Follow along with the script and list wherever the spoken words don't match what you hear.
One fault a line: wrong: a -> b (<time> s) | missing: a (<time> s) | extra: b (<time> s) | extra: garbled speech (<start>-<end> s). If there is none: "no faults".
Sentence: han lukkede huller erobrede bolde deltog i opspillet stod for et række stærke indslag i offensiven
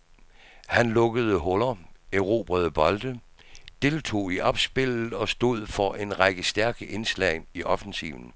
extra: og (5.1 s)
wrong: et -> en (6.0 s)